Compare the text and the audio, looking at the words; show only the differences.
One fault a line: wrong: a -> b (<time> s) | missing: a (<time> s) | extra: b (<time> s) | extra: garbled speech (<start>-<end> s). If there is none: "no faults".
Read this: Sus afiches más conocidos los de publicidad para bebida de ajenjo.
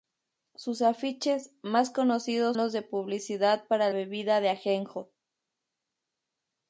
no faults